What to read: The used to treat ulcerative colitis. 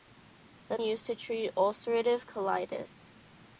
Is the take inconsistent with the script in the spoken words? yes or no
no